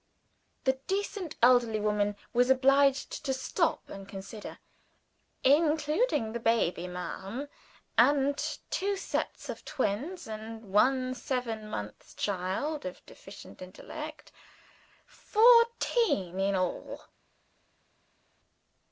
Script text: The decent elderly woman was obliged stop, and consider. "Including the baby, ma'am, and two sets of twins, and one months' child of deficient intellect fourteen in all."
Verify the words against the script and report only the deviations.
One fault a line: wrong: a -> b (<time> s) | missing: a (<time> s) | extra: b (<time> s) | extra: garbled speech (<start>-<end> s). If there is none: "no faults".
extra: to (3.2 s)
extra: seven (11.1 s)